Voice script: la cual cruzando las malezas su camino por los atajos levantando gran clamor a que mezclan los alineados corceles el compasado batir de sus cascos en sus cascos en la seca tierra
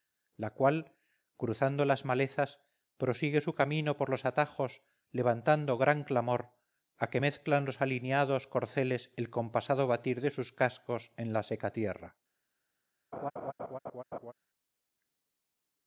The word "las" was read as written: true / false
true